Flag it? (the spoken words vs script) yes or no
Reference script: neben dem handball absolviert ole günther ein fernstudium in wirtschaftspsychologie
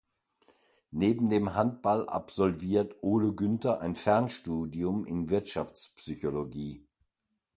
no